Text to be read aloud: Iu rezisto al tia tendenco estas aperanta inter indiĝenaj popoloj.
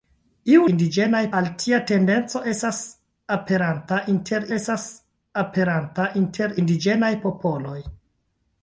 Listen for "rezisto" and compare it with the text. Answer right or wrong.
wrong